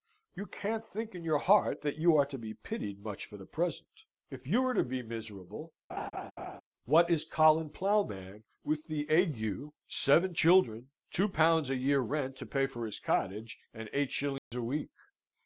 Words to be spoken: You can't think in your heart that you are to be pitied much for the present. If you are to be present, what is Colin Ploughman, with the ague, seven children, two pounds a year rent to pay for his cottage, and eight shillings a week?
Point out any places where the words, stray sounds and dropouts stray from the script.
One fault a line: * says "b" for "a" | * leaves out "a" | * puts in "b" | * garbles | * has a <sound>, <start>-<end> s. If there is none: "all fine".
* says "miserable" for "present"
* has a laugh, 5.9-6.6 s
* has a dropout, 14.4-14.5 s